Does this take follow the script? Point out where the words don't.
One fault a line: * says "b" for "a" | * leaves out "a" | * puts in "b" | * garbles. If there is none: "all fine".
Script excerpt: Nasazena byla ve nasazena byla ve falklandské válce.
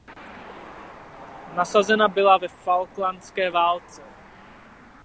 * leaves out "nasazena byla ve"